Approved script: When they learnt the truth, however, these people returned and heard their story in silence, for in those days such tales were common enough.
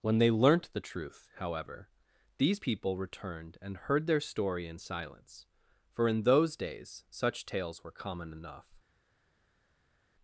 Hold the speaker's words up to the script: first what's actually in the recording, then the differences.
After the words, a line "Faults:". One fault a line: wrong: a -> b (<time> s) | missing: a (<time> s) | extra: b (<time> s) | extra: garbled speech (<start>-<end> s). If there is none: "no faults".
When they learnt the truth, however, these people returned and heard their story in silence, for in those days such tales were common enough.
Faults:
no faults